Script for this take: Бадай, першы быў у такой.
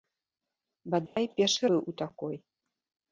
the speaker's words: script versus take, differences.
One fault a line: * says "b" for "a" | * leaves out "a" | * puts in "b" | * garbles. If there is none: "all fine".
all fine